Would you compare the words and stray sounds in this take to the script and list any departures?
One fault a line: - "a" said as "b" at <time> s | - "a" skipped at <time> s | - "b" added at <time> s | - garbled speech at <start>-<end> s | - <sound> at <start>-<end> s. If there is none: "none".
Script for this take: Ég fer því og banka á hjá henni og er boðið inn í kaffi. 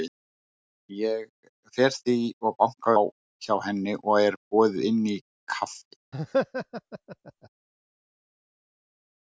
- laugh at 6.1-7.5 s